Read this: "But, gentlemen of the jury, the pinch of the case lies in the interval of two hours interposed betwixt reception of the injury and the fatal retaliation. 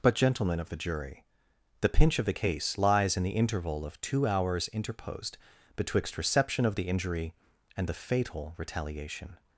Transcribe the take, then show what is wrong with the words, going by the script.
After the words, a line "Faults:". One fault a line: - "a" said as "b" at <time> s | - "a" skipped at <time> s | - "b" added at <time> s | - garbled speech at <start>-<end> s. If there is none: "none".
"But, gentlemen of the jury, the pinch of the case lies in the interval of two hours interposed betwixt reception of the injury and the fatal retaliation.
Faults:
none